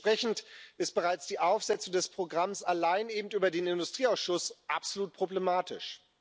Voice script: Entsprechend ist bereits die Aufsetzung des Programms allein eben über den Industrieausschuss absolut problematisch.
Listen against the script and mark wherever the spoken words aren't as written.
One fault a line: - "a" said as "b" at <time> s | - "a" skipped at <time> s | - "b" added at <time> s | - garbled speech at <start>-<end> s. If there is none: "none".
none